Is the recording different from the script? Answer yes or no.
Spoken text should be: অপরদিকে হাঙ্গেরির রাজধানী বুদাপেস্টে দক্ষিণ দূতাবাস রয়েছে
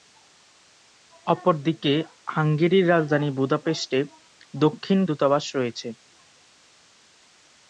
no